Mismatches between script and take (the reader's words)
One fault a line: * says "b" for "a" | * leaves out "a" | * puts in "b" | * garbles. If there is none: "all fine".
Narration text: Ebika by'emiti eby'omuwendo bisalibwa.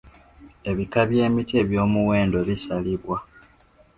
all fine